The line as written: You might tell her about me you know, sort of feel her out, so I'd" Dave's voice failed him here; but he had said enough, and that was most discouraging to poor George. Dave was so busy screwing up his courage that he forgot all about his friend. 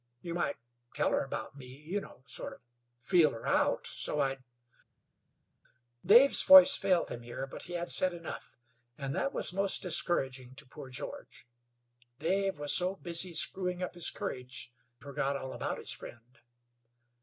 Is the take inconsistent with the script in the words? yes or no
yes